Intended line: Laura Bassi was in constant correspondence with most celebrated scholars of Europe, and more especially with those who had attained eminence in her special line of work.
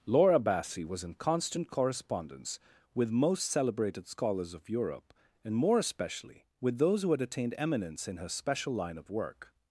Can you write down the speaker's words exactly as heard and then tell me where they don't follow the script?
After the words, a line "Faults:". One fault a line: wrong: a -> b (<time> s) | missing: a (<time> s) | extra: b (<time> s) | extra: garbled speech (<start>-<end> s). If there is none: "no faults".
Laura Bassi was in constant correspondence with most celebrated scholars of Europe, and more especially with those who had attained eminence in her special line of work.
Faults:
no faults